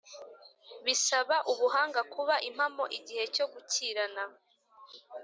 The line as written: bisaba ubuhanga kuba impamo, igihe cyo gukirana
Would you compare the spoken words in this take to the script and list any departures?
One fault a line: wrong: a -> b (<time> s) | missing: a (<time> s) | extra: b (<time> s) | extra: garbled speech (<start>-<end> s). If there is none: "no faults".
no faults